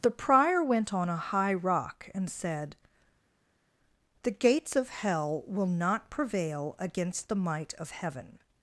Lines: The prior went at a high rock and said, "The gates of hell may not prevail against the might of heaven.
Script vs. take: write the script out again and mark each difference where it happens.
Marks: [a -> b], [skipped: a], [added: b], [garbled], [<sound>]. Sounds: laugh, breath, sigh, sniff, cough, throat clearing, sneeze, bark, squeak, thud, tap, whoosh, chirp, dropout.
The prior went [at -> on] a high rock and said, "The gates of hell [may -> will] not prevail against the might of heaven.